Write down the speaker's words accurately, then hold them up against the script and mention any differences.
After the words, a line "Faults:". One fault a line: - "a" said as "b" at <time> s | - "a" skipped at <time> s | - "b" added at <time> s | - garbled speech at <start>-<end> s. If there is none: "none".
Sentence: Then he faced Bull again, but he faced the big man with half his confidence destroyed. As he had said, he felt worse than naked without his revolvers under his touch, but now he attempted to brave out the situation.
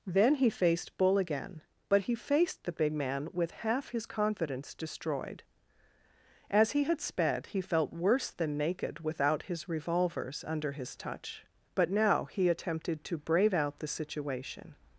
Then he faced Bull again, but he faced the big man with half his confidence destroyed. As he had sped, he felt worse than naked without his revolvers under his touch, but now he attempted to brave out the situation.
Faults:
- "said" said as "sped" at 7.0 s